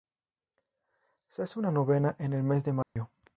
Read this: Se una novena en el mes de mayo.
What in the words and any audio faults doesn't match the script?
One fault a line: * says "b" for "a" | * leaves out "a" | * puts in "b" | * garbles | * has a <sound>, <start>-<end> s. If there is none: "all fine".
* puts in "hace"
* has a dropout, 2.8-3.0 s